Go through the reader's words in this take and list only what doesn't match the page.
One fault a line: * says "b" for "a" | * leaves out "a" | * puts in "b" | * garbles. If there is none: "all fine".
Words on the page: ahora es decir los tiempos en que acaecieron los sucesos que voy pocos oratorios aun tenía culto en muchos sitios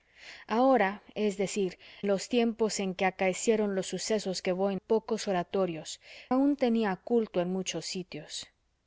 all fine